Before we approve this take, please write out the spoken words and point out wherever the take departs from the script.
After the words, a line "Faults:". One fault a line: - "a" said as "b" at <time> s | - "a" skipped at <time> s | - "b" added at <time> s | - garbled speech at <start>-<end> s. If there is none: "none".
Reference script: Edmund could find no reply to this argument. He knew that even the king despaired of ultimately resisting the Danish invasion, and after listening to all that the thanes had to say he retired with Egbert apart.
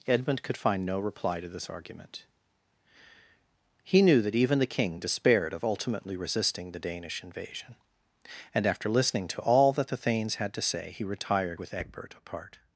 Edmund could find no reply to this argument. He knew that even the king despaired of ultimately resisting the Danish invasion, and after listening to all that the thanes had to say he retired with Egbert apart.
Faults:
none